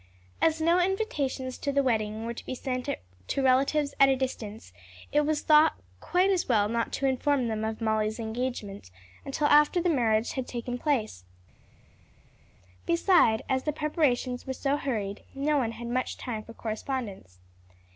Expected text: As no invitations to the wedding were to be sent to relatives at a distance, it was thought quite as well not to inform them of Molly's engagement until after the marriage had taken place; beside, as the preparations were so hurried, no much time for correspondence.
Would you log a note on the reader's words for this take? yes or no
yes